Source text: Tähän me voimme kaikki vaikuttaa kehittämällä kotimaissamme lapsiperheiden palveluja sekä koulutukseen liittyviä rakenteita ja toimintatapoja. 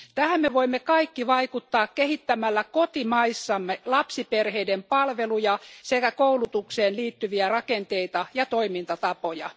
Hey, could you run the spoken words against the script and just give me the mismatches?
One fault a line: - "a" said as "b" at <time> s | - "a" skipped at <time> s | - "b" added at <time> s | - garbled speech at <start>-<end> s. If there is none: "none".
none